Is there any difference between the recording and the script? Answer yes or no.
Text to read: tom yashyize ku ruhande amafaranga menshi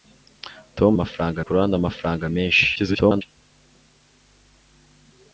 yes